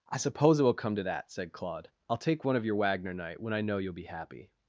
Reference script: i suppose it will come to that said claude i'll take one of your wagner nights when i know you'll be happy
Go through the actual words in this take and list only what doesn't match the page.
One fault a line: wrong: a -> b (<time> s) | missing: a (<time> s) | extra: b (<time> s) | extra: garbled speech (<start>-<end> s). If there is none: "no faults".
wrong: nights -> night (3.1 s)